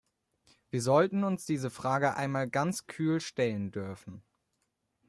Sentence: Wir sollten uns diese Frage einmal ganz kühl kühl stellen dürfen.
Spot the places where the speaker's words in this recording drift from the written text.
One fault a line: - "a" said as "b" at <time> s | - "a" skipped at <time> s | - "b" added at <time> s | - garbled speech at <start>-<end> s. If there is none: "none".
- "kühl" skipped at 3.2 s